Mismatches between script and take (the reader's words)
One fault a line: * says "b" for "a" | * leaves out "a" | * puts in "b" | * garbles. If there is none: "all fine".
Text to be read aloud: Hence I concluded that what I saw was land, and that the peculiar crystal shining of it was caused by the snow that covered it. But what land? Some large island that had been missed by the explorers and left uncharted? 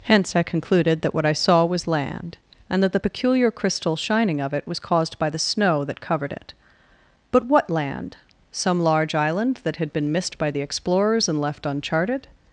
all fine